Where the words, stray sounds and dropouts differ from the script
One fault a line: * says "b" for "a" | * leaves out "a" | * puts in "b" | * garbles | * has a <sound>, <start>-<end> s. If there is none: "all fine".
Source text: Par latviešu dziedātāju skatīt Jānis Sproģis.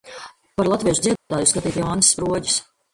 * has a dropout, 1.2-1.3 s